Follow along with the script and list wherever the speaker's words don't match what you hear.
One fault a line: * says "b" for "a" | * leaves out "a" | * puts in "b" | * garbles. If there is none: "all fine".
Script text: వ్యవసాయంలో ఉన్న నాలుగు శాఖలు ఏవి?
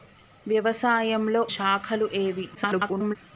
* leaves out "ఉన్న నాలుగు"
* garbles